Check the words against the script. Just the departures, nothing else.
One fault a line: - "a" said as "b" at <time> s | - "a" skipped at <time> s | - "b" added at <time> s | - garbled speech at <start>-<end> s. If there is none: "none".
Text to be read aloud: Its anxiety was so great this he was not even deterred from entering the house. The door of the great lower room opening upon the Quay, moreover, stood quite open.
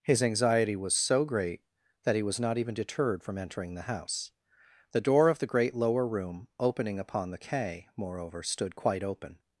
- "Its" said as "His" at 0.0 s
- "this" said as "that" at 2.0 s